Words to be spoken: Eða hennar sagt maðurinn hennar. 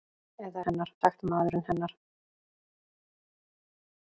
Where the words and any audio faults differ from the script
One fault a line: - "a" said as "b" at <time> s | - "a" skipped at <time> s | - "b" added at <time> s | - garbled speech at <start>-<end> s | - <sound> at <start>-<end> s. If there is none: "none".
none